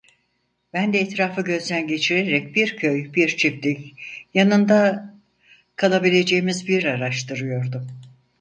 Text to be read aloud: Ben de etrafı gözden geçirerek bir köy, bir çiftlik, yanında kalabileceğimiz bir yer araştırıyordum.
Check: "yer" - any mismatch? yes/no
yes